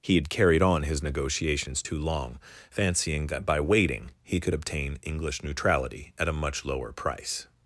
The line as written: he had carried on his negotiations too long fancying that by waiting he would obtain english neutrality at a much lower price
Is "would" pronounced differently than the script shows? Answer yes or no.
yes